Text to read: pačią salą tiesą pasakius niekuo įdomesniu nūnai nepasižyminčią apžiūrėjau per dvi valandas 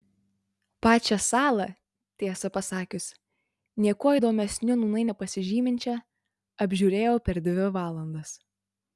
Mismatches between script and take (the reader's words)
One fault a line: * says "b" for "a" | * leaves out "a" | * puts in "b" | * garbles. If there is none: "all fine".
all fine